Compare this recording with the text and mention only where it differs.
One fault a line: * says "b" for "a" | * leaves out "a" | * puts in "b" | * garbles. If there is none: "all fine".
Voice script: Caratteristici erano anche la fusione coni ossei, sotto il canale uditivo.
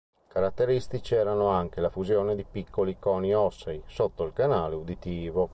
* puts in "di piccoli"